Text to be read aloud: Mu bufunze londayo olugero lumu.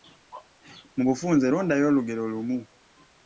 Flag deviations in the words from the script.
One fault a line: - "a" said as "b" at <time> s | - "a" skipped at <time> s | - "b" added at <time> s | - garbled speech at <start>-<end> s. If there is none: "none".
none